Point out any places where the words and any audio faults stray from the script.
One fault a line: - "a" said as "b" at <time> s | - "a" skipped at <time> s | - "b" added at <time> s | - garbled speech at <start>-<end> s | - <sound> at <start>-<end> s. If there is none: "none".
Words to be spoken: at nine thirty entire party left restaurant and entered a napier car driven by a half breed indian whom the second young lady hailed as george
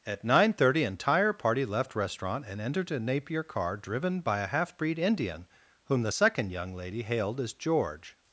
none